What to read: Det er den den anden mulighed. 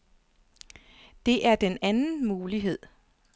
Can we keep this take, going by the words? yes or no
no